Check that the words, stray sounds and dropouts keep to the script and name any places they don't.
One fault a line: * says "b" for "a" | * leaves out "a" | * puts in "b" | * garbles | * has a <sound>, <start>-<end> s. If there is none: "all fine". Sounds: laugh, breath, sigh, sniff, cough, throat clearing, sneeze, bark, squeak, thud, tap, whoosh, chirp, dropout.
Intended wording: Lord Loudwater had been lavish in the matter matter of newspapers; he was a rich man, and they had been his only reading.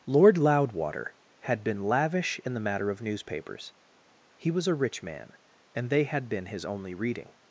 * leaves out "matter"